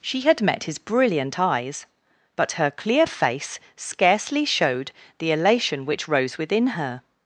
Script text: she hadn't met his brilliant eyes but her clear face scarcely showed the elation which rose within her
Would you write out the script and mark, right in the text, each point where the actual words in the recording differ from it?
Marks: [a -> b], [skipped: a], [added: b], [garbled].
she [hadn't -> had] met his brilliant eyes but her clear face scarcely showed the elation which rose within her